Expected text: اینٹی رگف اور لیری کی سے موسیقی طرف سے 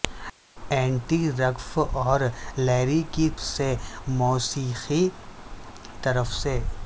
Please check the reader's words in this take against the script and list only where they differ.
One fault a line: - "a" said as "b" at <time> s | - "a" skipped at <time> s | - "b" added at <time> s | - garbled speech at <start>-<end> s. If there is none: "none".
none